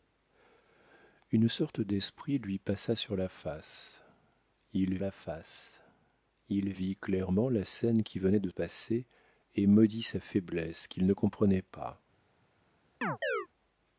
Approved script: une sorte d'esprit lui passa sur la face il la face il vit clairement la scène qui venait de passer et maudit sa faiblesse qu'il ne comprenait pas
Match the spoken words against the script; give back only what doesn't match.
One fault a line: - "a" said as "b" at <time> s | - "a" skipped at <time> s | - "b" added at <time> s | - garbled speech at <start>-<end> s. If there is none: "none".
none